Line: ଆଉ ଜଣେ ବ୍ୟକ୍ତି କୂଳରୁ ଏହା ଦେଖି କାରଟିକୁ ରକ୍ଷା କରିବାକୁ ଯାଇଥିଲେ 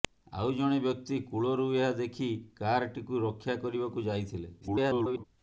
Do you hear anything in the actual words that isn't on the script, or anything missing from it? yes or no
yes